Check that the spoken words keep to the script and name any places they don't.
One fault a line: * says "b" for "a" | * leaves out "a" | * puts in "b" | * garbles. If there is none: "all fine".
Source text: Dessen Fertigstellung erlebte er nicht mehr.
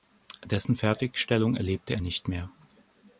all fine